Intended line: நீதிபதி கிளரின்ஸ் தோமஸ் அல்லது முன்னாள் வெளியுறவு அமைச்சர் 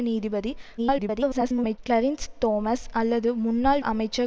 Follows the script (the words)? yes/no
no